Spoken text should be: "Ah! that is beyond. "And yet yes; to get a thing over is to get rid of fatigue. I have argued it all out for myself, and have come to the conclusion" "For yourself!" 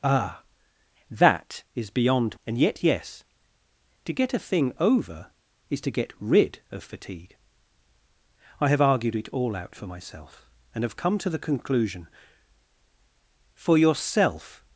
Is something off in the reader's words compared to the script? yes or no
no